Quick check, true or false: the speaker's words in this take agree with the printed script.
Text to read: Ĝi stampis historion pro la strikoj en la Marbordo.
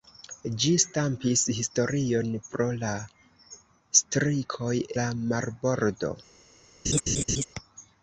false